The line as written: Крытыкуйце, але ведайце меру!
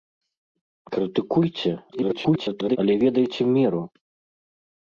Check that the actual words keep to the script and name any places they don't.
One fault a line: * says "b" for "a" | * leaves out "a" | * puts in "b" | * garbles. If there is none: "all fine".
* garbles